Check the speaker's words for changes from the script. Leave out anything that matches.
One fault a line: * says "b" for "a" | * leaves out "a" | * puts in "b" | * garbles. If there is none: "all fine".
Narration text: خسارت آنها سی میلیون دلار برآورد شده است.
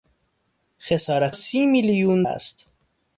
* leaves out "آنها"
* leaves out "دلار برآورد شده"